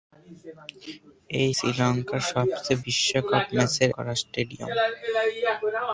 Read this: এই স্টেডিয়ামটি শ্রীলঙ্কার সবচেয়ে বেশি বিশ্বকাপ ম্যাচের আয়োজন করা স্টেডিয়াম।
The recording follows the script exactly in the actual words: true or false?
false